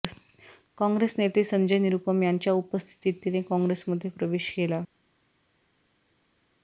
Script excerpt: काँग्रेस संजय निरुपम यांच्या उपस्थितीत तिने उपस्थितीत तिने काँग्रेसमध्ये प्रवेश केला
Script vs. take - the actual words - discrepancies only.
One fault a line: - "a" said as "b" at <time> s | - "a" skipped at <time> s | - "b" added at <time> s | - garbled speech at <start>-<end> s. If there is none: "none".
- "नेते" added at 1.2 s
- "उपस्थितीत तिने" skipped at 3.4 s